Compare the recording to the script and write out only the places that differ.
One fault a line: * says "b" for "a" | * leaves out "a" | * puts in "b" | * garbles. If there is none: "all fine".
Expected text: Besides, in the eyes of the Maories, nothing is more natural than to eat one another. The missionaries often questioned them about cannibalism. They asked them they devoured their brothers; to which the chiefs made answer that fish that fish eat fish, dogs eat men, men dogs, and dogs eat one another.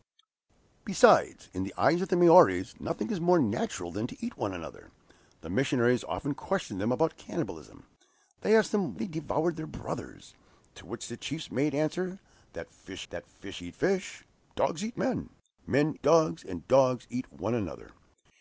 all fine